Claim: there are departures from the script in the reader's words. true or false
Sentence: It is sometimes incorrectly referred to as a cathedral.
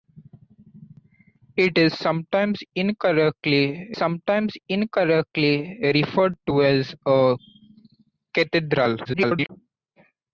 true